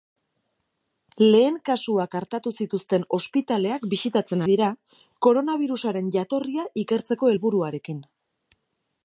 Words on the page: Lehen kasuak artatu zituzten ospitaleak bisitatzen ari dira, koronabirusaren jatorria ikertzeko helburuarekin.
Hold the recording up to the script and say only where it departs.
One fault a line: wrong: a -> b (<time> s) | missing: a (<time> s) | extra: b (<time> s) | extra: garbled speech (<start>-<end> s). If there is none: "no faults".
missing: ari (4.4 s)